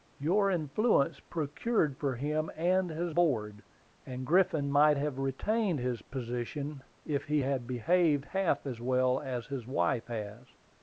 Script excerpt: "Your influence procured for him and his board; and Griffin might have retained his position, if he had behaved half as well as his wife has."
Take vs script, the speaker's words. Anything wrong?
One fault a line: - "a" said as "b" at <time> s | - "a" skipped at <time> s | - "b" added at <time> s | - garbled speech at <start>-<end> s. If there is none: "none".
none